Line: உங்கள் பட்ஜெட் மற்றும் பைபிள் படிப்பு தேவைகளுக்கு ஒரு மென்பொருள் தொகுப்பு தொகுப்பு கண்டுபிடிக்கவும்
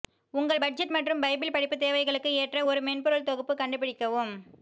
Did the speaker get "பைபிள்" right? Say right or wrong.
right